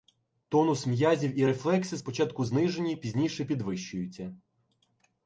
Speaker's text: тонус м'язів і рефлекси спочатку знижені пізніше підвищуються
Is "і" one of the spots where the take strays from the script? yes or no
no